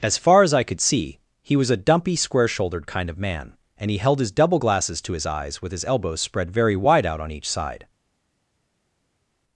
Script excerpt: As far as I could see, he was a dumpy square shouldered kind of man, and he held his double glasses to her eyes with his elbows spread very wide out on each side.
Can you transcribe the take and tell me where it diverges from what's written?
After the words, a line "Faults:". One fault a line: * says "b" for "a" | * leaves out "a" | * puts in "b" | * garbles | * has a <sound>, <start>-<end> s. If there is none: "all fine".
As far as I could see, he was a dumpy square shouldered kind of man, and he held his double glasses to his eyes with his elbows spread very wide out on each side.
Faults:
* says "his" for "her"